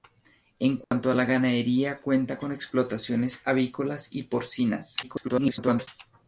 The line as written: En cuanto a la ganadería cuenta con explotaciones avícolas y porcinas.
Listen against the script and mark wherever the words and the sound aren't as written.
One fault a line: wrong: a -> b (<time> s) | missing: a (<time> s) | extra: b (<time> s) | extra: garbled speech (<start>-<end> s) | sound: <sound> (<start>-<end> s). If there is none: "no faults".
sound: dropout (0.8-0.9 s)
extra: garbled speech (5.0-5.9 s)